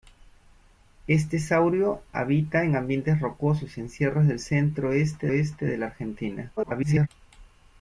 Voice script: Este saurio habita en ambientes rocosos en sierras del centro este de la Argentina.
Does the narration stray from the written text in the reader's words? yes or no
yes